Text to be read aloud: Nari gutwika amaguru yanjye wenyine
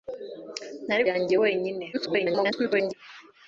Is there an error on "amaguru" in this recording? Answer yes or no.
yes